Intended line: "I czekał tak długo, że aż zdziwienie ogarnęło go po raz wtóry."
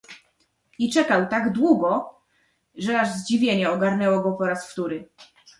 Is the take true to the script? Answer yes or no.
yes